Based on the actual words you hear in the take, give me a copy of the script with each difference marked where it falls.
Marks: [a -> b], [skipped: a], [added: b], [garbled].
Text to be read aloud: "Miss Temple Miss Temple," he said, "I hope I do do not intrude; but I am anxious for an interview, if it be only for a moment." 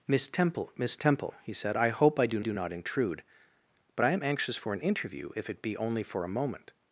"Miss Temple Miss Temple," he said, "I hope I do do not intrude; but I am anxious for an interview, if it be only for a moment."